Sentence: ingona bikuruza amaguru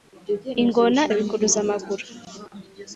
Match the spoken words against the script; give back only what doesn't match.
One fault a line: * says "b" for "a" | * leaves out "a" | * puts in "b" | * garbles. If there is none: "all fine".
all fine